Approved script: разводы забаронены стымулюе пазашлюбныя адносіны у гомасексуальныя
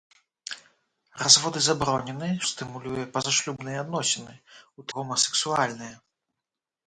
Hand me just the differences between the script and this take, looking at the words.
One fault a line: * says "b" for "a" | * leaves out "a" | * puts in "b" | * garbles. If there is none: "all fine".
all fine